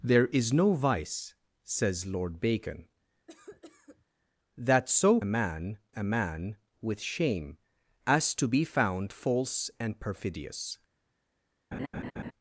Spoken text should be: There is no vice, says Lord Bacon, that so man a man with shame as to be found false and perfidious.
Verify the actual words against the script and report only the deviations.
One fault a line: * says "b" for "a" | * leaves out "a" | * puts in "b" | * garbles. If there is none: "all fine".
all fine